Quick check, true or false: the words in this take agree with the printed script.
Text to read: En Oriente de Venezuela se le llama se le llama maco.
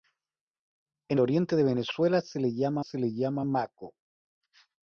true